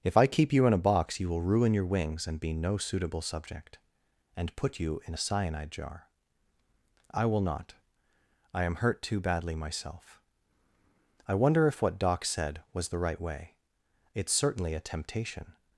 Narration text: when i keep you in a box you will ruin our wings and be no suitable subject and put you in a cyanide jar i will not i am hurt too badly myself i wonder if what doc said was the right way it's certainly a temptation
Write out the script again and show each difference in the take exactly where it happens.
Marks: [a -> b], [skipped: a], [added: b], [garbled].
[when -> if] i keep you in a box you will ruin [our -> your] wings and be no suitable subject and put you in a cyanide jar i will not i am hurt too badly myself i wonder if what doc said was the right way it's certainly a temptation